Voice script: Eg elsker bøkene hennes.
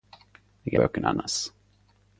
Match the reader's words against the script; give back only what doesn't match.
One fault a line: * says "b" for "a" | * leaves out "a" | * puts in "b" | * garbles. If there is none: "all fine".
* leaves out "elsker"